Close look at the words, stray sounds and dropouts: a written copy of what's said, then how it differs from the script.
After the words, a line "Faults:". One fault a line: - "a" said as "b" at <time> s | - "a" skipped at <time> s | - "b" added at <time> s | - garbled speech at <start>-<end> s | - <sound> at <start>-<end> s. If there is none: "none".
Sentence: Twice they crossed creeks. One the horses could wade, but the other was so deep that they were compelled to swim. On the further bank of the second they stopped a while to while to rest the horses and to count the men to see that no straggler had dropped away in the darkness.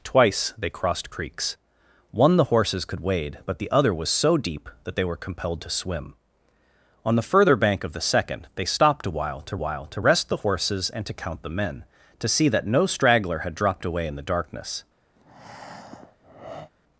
Twice they crossed creeks. One the horses could wade, but the other was so deep that they were compelled to swim. On the further bank of the second they stopped a while to while to rest the horses and to count the men to see that no straggler had dropped away in the darkness.
Faults:
- breath at 15.2-16.7 s